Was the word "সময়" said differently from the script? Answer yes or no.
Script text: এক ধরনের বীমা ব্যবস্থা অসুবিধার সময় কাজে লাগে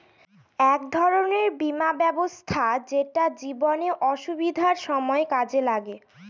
no